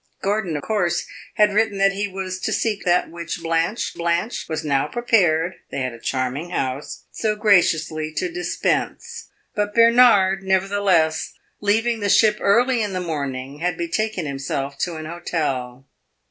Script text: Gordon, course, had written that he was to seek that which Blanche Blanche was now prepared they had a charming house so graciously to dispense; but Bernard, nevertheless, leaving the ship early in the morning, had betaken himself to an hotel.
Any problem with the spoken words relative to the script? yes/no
no